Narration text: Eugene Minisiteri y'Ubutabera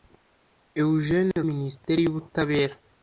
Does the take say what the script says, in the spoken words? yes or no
yes